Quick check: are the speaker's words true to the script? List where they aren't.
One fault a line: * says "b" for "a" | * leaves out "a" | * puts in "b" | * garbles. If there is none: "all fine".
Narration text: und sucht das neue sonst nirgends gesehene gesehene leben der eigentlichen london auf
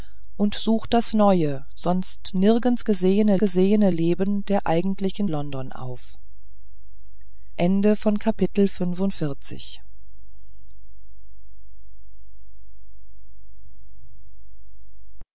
all fine